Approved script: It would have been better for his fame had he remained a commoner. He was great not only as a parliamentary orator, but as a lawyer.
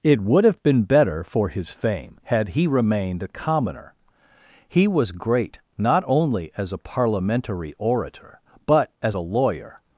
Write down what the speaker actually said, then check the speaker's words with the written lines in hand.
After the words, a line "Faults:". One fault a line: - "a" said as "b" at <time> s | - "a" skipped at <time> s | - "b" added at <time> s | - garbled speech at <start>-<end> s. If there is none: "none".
It would have been better for his fame had he remained a commoner. He was great not only as a parliamentary orator, but as a lawyer.
Faults:
none